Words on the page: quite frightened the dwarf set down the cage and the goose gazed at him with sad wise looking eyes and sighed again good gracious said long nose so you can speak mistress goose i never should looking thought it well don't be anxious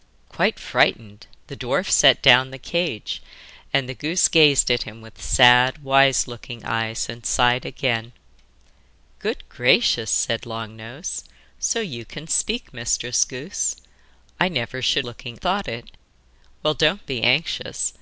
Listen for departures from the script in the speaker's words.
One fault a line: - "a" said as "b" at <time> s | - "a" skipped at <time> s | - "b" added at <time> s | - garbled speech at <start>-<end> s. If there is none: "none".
none